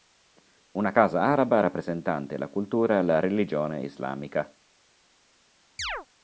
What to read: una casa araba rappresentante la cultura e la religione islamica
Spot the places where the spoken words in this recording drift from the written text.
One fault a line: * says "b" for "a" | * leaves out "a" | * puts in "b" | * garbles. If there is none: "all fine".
all fine